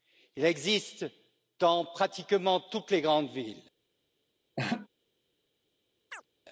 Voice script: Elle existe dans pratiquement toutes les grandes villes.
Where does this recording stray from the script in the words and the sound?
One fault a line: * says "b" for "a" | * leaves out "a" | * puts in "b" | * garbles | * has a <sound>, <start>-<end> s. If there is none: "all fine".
* says "Il" for "Elle"
* has a laugh, 4.6-4.9 s
* has a chirp, 6.1-6.3 s